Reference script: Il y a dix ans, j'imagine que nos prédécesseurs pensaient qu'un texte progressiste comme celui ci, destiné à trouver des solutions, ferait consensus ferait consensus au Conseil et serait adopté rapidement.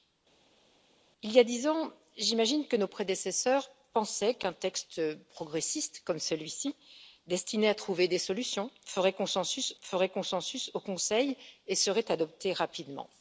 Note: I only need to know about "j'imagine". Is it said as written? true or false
true